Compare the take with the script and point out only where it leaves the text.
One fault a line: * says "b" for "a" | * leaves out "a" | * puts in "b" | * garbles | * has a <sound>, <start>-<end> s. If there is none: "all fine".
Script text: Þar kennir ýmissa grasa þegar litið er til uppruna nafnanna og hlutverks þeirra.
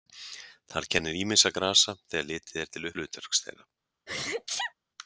* leaves out "uppruna nafnanna og"
* has a sneeze, 4.1-4.7 s